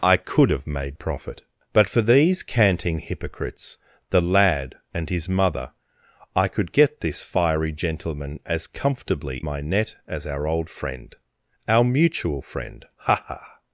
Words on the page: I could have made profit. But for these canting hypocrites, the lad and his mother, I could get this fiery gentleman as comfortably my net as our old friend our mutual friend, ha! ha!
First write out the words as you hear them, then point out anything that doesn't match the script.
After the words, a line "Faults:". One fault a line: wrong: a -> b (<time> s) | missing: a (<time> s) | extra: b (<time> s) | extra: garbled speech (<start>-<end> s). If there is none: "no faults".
I could have made profit. But for these canting hypocrites, the lad and his mother, I could get this fiery gentleman as comfortably my net as our old friend our mutual friend, ha! ha!
Faults:
no faults